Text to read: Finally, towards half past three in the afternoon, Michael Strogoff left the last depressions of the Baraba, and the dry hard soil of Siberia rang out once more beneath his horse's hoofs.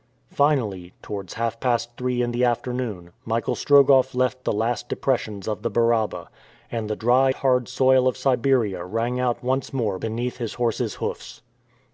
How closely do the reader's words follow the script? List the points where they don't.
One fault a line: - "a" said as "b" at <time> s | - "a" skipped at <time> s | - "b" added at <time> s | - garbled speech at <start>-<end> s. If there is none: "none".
none